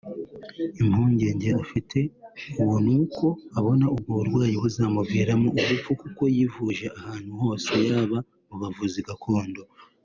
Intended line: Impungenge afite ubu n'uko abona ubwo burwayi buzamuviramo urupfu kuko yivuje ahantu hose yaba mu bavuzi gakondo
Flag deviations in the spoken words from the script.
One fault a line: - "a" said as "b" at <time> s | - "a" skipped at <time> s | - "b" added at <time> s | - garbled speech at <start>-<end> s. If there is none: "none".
none